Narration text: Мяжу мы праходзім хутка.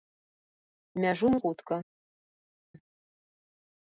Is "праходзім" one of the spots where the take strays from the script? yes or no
yes